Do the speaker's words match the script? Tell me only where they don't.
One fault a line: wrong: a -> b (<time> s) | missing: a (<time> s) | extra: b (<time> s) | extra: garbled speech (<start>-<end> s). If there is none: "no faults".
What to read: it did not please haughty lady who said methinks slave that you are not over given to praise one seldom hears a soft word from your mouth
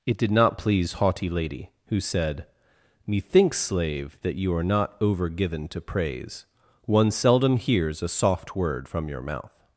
no faults